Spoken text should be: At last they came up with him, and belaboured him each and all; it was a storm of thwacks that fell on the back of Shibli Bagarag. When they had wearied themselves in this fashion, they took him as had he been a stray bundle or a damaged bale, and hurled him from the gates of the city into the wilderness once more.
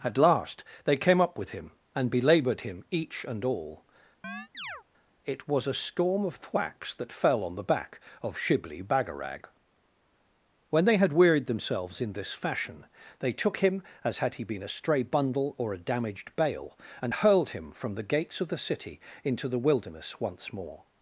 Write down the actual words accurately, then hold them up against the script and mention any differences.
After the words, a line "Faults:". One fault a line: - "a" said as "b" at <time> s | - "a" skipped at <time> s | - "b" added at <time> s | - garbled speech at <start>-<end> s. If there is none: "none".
At last they came up with him, and belaboured him each and all; it was a storm of thwacks that fell on the back of Shibli Bagarag. When they had wearied themselves in this fashion, they took him as had he been a stray bundle or a damaged bale, and hurled him from the gates of the city into the wilderness once more.
Faults:
none